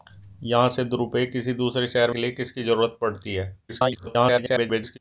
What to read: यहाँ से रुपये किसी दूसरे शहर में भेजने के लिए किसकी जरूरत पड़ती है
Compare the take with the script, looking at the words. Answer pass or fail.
fail